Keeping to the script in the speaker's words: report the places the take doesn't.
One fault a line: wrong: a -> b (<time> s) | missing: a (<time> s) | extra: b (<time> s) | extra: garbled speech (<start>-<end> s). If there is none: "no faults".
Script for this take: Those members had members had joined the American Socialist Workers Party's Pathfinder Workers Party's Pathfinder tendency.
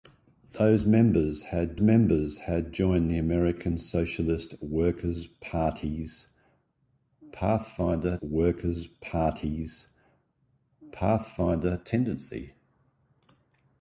no faults